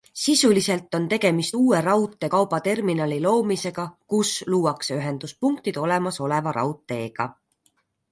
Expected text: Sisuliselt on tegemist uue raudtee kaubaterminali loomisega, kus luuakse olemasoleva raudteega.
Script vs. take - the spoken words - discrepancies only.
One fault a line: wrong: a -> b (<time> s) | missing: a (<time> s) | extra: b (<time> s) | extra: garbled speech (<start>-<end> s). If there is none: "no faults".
extra: ühenduspunktid (5.0 s)